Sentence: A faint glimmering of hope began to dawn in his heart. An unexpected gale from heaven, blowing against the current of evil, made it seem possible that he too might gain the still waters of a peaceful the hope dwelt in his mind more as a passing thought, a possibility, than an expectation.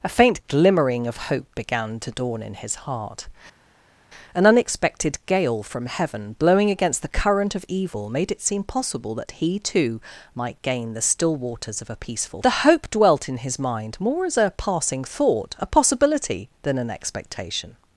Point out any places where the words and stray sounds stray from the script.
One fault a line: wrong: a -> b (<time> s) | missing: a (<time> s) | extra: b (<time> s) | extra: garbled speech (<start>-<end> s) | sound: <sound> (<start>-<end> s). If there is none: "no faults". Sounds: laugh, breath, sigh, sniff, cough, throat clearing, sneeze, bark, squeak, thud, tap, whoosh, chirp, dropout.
no faults